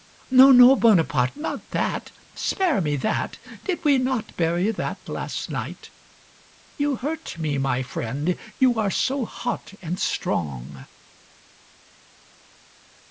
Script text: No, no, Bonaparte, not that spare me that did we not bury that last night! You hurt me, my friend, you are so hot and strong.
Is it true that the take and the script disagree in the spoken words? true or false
false